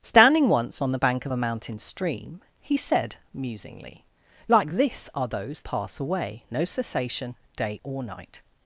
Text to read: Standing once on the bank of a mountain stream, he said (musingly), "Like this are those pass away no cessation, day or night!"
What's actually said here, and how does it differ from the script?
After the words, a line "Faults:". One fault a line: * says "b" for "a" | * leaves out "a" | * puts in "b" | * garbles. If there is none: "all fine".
Standing once on the bank of a mountain stream, he said (musingly), "Like this are those pass away no cessation, day or night!"
Faults:
all fine